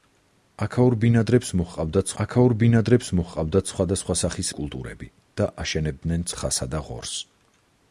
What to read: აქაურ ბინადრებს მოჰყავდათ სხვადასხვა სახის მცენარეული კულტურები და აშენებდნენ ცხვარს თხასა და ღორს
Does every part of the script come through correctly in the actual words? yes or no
no